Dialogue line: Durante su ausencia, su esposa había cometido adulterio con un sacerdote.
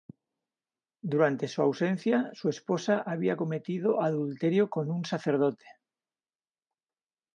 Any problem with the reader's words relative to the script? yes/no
no